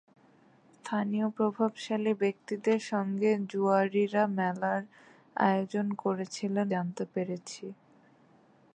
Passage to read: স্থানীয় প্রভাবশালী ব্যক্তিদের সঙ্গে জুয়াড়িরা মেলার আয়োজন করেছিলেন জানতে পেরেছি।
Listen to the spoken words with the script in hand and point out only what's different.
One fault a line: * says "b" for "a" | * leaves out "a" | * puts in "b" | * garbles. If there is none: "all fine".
all fine